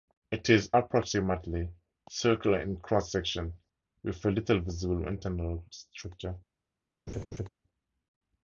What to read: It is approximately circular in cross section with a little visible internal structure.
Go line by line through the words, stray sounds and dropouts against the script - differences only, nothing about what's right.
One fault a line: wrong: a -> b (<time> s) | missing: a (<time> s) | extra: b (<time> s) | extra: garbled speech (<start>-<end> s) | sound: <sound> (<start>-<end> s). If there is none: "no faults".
sound: laugh (7.1-7.5 s)